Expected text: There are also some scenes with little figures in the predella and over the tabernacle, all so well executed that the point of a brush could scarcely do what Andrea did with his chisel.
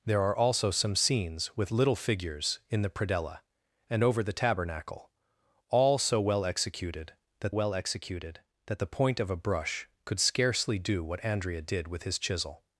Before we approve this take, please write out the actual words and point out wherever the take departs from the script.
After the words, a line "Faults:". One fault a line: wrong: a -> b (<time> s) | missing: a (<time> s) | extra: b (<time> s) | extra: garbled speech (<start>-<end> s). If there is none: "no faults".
There are also some scenes with little figures in the predella and over the tabernacle, all so well executed that well executed that the point of a brush could scarcely do what Andrea did with his chisel.
Faults:
extra: well executed that (7.5 s)